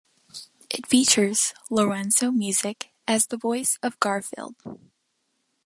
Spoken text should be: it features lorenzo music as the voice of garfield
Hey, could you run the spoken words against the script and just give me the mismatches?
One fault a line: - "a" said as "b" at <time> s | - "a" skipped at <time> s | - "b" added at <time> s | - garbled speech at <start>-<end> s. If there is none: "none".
none